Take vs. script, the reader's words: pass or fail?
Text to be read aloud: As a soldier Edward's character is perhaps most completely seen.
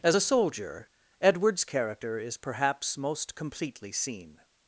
pass